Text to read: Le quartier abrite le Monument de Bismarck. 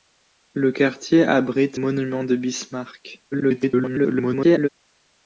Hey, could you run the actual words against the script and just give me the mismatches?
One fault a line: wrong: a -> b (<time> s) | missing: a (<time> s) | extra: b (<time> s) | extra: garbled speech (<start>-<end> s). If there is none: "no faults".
missing: le (1.8 s)
extra: garbled speech (3.3-4.7 s)